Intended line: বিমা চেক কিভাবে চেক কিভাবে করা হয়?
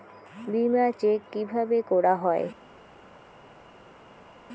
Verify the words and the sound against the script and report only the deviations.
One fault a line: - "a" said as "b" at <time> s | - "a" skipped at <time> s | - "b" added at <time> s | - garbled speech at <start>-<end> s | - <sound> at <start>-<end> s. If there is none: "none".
- "চেক কিভাবে" skipped at 1.8 s